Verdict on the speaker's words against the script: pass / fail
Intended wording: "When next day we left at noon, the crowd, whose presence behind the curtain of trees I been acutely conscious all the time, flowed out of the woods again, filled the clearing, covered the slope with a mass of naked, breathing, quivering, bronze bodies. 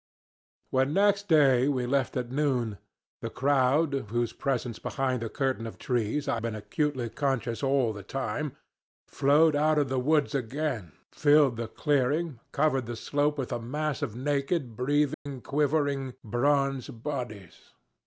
pass